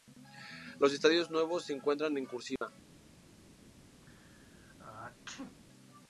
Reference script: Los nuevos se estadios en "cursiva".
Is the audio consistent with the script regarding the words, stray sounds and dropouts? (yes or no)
no